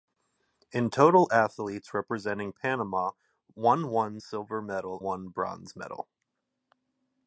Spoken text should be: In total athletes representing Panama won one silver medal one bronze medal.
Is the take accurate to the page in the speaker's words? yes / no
yes